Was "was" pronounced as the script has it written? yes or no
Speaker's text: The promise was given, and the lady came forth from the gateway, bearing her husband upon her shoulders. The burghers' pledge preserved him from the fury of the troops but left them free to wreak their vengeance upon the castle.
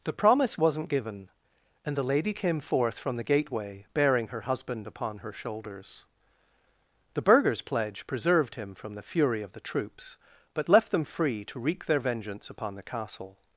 no